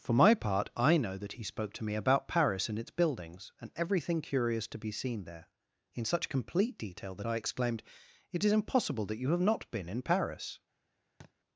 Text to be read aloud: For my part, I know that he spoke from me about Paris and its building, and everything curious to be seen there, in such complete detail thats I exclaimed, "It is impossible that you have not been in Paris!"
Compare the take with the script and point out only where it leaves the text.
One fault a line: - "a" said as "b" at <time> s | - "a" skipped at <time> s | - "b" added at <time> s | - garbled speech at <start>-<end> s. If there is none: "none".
- "from" said as "to" at 1.7 s
- "building" said as "buildings" at 2.9 s
- "thats" said as "that" at 7.1 s